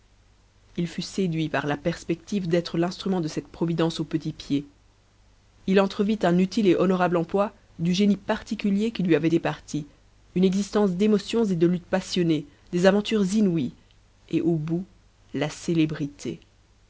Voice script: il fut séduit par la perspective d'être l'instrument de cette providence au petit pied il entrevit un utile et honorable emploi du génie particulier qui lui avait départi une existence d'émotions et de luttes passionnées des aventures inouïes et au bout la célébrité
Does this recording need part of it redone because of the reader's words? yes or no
no